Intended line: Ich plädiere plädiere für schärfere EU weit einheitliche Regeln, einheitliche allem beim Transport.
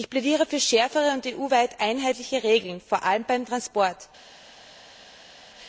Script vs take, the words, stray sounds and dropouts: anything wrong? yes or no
yes